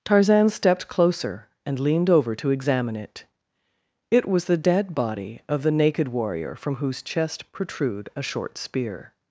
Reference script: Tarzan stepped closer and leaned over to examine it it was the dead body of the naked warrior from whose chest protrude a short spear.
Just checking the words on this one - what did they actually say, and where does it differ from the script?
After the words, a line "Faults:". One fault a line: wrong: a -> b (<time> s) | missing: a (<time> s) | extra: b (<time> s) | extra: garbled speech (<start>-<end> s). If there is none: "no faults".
Tarzan stepped closer and leaned over to examine it it was the dead body of the naked warrior from whose chest protrude a short spear.
Faults:
no faults